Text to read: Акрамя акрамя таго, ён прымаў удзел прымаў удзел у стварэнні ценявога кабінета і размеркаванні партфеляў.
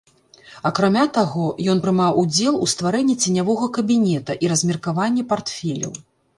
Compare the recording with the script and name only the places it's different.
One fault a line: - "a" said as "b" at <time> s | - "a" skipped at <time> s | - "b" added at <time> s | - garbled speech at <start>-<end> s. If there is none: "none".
- "акрамя" skipped at 1.0 s
- "прымаў удзел" skipped at 2.6 s